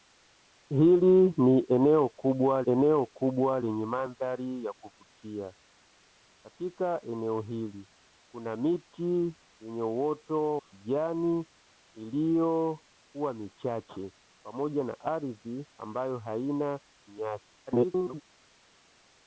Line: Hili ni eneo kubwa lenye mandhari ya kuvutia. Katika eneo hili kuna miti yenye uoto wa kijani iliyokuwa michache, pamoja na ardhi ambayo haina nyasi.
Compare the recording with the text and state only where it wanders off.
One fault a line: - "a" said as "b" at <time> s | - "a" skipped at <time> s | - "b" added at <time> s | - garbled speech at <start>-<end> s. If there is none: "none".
- "eneo kubwa" added at 2.7 s
- "wa" skipped at 10.6 s
- garbled speech at 17.7-18.2 s